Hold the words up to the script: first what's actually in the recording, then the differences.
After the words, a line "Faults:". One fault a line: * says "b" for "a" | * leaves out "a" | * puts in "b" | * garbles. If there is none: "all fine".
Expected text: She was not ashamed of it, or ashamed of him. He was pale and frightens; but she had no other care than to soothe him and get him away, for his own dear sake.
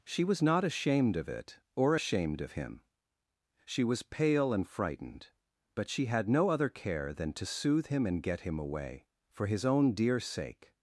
She was not ashamed of it, or ashamed of him. She was pale and frightened; but she had no other care than to soothe him and get him away, for his own dear sake.
Faults:
* says "She" for "He"
* says "frightened" for "frightens"